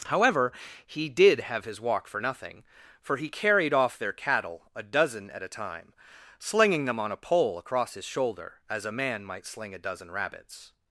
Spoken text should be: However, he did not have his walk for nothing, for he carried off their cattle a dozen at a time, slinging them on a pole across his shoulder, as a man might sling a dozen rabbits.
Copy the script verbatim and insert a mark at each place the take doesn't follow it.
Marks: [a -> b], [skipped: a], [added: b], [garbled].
However, he did [skipped: not] have his walk for nothing, for he carried off their cattle a dozen at a time, slinging them on a pole across his shoulder, as a man might sling a dozen rabbits.